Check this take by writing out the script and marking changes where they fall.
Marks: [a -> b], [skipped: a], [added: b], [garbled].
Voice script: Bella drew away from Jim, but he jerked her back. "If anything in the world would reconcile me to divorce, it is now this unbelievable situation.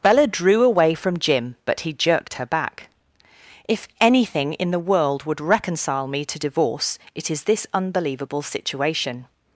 Bella drew away from Jim, but he jerked her back. "If anything in the world would reconcile me to divorce, it is [skipped: now] this unbelievable situation.